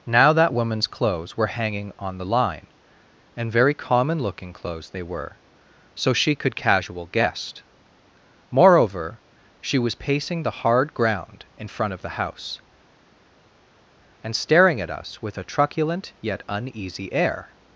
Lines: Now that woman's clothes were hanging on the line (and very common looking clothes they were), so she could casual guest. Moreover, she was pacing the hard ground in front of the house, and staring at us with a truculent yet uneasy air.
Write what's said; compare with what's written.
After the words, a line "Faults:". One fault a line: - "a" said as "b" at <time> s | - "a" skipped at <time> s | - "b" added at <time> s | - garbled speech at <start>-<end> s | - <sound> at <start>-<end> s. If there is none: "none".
Now that woman's clothes were hanging on the line (and very common looking clothes they were), so she could casual guest. Moreover, she was pacing the hard ground in front of the house, and staring at us with a truculent yet uneasy air.
Faults:
none